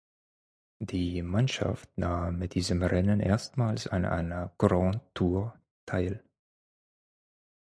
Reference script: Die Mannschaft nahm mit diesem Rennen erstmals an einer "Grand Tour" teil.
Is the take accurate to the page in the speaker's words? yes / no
yes